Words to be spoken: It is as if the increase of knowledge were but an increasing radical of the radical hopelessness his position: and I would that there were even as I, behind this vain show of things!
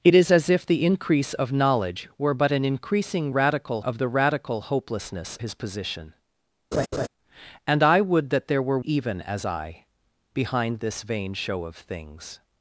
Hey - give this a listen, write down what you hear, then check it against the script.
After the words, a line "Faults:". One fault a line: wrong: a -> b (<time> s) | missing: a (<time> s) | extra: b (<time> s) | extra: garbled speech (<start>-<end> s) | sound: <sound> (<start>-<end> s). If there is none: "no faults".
It is as if the increase of knowledge were but an increasing radical of the radical hopelessness his position: and I would that there were even as I, behind this vain show of things!
Faults:
sound: laugh (6.7-7.1 s)